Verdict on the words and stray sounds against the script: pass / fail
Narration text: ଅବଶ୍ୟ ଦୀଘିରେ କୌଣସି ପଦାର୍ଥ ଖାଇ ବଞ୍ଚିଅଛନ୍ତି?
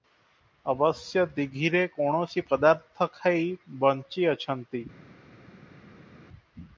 pass